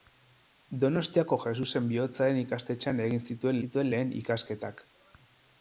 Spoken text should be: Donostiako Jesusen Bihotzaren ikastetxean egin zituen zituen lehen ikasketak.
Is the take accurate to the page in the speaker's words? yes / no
yes